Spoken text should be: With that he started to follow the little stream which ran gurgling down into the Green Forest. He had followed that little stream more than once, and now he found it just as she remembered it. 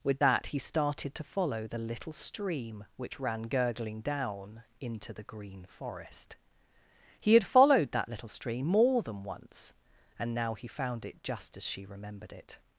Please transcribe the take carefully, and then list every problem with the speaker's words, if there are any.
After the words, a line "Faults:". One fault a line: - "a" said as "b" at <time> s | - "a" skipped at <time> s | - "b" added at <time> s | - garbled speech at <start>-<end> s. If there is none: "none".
With that he started to follow the little stream which ran gurgling down into the Green Forest. He had followed that little stream more than once, and now he found it just as she remembered it.
Faults:
none